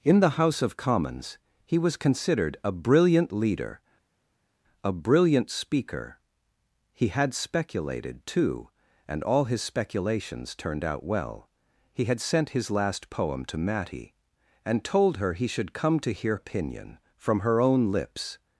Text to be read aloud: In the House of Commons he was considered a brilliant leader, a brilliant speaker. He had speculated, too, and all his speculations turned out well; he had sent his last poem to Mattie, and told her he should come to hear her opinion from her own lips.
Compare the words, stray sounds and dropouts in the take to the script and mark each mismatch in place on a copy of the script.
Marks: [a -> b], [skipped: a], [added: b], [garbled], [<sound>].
In the House of Commons he was considered a brilliant leader, a brilliant speaker. He had speculated, too, and all his speculations turned out well; he had sent his last poem to Mattie, and told her he should come to hear [skipped: her] opinion from her own lips.